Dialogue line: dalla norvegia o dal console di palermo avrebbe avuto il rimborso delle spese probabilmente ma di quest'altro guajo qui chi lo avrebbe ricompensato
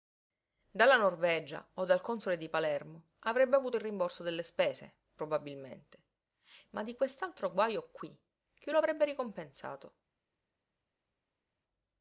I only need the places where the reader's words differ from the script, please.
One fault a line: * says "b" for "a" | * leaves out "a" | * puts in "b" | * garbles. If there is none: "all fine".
all fine